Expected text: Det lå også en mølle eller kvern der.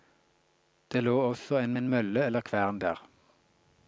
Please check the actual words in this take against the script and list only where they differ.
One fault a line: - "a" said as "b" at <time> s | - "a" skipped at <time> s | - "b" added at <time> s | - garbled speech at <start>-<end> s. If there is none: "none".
- "en" added at 1.7 s